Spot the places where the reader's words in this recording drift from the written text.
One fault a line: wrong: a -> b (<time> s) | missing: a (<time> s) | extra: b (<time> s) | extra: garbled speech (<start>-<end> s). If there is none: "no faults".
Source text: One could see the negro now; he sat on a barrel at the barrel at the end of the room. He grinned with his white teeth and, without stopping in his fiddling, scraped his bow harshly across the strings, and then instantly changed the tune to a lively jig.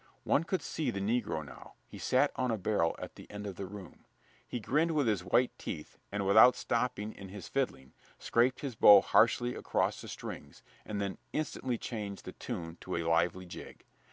missing: barrel at the (3.3 s)